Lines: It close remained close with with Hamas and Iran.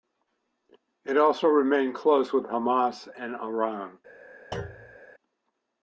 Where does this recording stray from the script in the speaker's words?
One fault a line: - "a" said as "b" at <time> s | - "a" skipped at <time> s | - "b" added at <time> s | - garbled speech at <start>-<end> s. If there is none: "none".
- "close" said as "also" at 1.1 s
- "with" skipped at 2.4 s